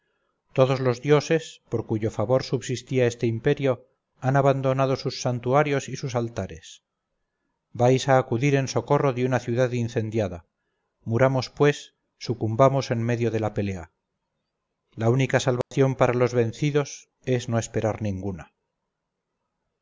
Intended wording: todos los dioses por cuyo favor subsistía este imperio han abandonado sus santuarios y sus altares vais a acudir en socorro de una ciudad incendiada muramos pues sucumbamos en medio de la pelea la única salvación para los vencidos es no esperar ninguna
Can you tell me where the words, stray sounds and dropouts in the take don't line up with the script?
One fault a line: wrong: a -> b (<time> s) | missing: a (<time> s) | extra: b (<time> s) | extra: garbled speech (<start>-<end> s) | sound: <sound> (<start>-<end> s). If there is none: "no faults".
sound: dropout (15.6-15.7 s)